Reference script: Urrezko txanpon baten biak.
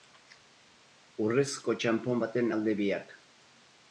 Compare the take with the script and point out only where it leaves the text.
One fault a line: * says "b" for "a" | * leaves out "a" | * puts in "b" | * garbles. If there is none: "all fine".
* puts in "alde"